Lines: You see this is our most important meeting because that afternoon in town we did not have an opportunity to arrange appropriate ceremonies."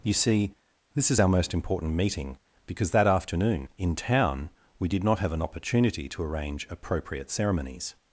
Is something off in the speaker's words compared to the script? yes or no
no